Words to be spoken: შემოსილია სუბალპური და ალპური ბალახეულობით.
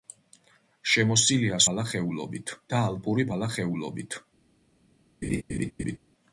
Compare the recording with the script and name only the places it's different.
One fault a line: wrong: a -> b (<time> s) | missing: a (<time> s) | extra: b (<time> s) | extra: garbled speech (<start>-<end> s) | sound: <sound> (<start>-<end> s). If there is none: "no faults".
wrong: სუბალპური -> ბალახეულობით (1.7 s)
sound: laugh (5.2-6.0 s)